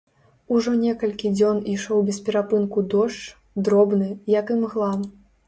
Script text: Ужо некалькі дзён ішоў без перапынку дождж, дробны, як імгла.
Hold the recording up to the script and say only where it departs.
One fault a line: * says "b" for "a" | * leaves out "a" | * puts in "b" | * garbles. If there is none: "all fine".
all fine